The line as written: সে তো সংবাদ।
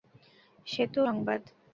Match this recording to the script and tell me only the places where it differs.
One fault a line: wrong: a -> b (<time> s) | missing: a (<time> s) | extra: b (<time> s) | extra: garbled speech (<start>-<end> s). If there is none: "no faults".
no faults